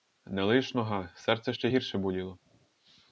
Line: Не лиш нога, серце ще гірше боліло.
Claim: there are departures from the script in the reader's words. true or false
false